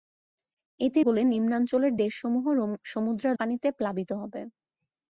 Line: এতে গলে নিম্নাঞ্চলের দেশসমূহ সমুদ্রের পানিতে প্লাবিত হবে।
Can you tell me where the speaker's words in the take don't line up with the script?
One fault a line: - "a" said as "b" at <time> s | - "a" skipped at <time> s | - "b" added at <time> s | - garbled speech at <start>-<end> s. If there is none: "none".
none